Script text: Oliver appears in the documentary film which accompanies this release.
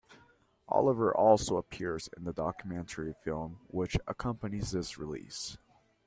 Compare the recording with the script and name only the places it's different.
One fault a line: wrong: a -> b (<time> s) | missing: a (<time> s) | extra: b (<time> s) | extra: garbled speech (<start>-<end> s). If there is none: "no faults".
extra: also (1.1 s)